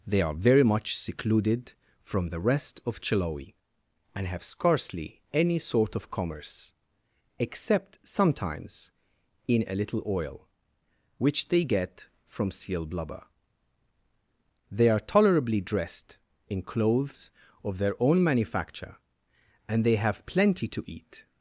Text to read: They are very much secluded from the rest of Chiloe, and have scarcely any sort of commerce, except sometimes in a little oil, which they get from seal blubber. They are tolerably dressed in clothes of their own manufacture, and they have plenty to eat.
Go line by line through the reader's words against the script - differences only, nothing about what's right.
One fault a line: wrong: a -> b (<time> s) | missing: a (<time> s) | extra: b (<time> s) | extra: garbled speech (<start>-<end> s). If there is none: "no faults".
no faults